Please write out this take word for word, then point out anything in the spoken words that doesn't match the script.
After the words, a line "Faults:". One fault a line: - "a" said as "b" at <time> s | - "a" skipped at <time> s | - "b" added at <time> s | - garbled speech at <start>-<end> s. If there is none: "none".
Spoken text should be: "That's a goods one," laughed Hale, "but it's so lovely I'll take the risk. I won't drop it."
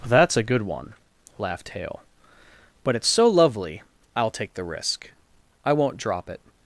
"That's a good one," laughed Hale, "but it's so lovely I'll take the risk. I won't drop it."
Faults:
- "goods" said as "good" at 0.4 s